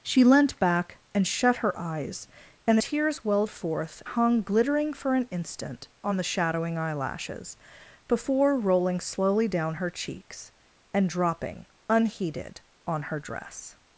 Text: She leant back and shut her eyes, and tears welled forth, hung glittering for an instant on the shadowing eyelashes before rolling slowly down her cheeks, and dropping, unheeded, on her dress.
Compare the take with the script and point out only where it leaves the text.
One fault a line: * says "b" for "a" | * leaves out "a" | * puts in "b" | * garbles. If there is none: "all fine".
all fine